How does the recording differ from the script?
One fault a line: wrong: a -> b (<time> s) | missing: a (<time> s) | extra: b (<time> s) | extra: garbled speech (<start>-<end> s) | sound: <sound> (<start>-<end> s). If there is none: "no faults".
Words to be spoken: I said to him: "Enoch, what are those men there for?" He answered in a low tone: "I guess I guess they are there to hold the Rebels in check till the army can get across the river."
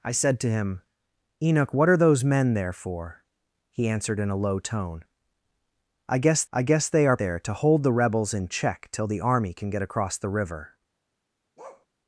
sound: bark (11.6-11.9 s)